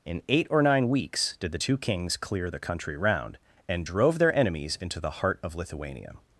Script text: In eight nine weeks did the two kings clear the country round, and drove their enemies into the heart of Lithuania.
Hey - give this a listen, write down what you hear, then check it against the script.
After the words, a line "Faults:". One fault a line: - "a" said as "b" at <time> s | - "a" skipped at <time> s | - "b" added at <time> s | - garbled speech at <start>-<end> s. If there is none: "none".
In eight or nine weeks did the two kings clear the country round, and drove their enemies into the heart of Lithuania.
Faults:
- "or" added at 0.5 s